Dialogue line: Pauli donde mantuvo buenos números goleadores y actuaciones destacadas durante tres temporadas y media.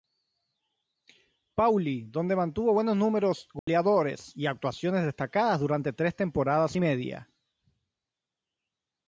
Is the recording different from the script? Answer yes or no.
no